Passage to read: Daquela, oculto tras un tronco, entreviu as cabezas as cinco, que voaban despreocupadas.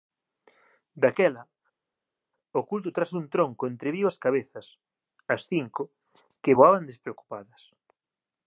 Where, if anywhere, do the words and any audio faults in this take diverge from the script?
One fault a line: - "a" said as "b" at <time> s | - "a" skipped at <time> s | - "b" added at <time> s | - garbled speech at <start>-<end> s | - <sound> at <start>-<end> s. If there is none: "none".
none